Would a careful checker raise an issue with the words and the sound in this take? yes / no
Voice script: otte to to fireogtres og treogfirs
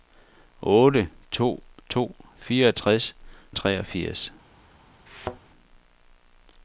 yes